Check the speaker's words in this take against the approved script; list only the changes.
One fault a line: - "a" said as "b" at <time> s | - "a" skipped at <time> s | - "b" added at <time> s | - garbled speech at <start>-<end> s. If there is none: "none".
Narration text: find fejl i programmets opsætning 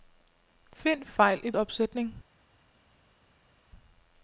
- "programmets" skipped at 1.5 s